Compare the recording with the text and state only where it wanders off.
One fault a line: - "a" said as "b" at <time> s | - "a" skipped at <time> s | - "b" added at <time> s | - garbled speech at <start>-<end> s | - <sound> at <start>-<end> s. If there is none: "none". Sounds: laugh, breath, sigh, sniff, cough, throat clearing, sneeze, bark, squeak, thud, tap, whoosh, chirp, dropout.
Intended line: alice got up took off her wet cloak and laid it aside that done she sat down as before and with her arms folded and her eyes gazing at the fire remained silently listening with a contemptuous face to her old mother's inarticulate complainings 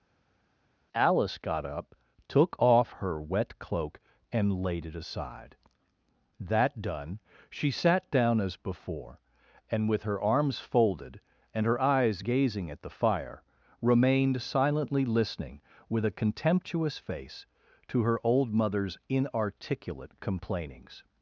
none